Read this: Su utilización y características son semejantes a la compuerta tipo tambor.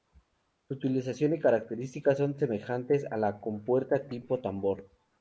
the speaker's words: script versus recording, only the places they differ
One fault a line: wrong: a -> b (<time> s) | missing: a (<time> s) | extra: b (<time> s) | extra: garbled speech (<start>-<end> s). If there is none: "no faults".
no faults